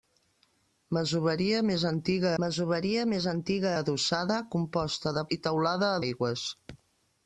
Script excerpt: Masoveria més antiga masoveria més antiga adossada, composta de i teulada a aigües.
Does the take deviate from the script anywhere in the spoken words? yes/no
no